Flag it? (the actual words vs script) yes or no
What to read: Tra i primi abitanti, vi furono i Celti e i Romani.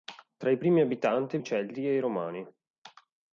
yes